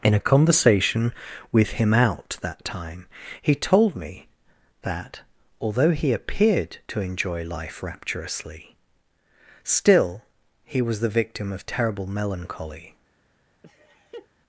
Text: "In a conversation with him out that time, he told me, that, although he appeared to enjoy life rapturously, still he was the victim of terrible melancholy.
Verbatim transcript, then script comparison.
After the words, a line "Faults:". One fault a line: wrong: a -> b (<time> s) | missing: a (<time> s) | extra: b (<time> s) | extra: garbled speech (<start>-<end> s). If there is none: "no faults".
"In a conversation with him out that time, he told me, that, although he appeared to enjoy life rapturously, still he was the victim of terrible melancholy.
Faults:
no faults